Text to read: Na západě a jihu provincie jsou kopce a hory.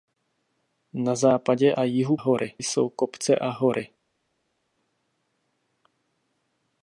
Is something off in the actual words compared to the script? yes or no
yes